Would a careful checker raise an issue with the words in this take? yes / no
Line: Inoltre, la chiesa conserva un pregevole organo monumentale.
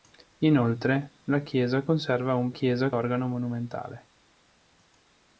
yes